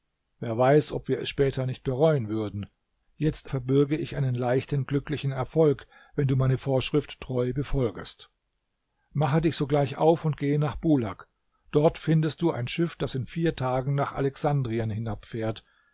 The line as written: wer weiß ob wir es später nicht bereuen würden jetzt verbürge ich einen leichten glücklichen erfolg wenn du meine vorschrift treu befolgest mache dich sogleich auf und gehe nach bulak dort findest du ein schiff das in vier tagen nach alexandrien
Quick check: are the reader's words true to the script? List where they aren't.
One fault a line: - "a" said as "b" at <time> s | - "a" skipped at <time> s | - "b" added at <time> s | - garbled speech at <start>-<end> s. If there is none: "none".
none